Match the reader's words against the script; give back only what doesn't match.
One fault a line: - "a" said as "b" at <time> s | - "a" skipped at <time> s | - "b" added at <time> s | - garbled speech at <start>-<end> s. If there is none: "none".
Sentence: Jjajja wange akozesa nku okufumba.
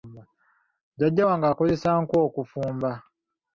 none